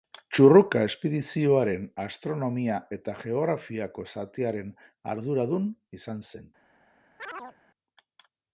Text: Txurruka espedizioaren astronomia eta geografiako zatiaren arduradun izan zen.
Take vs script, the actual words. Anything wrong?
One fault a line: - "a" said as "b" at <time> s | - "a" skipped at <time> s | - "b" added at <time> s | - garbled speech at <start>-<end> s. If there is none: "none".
none